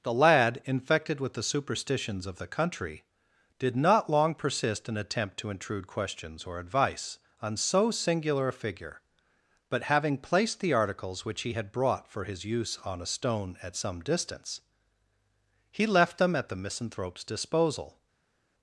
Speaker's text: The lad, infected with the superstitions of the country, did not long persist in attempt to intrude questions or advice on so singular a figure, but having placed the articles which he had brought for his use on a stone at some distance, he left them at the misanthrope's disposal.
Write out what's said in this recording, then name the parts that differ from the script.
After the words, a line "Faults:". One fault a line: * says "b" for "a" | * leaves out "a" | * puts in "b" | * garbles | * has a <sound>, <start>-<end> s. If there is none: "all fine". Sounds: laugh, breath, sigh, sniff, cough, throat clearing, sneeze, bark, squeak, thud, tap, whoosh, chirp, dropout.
The lad, infected with the superstitions of the country, did not long persist in attempt to intrude questions or advice on so singular a figure, but having placed the articles which he had brought for his use on a stone at some distance, he left them at the misanthrope's disposal.
Faults:
all fine